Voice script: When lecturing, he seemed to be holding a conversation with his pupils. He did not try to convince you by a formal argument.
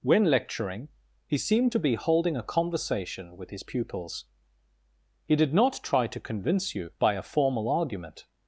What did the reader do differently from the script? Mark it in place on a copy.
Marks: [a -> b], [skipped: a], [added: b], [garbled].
When lecturing, he seemed to be holding a conversation with his pupils. He did not try to convince you by a formal argument.